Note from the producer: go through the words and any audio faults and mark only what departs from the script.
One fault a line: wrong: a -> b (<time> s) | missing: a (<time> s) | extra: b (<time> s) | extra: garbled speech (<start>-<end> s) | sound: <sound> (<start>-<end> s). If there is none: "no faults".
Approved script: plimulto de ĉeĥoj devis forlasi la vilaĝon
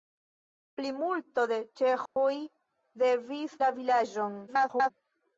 sound: dropout (2.1-2.2 s)
missing: forlasi (3.5 s)
extra: garbled speech (4.5-4.9 s)